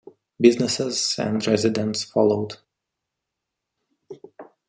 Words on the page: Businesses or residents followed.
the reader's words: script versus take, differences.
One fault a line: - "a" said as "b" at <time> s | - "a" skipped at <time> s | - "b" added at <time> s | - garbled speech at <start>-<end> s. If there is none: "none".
- "or" said as "and" at 1.2 s